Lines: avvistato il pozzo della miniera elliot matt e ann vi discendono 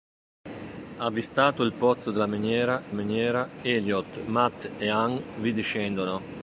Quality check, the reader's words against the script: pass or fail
fail